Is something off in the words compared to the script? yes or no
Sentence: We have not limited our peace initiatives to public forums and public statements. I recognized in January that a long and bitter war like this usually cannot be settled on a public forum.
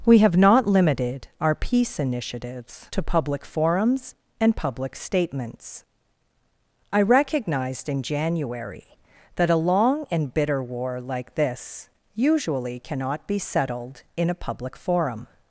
yes